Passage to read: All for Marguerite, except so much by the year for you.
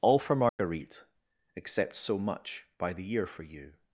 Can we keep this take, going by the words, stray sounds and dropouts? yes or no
no